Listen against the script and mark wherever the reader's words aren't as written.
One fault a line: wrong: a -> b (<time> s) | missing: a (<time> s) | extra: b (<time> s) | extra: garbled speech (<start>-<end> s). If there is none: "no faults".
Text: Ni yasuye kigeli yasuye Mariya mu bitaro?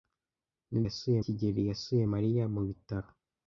no faults